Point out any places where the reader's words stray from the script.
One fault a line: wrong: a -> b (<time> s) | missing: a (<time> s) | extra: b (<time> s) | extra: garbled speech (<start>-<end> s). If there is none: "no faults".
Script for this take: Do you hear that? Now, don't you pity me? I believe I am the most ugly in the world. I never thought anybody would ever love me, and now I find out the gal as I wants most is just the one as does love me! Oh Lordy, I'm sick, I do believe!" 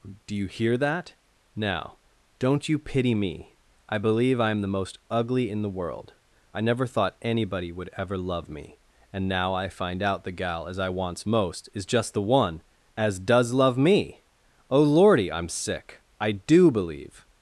no faults